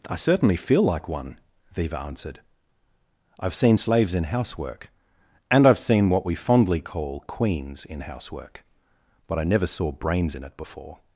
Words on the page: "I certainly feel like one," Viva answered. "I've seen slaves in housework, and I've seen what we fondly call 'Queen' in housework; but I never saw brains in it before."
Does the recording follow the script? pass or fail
fail